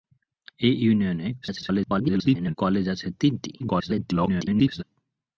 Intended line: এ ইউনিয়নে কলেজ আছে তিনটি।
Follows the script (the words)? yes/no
no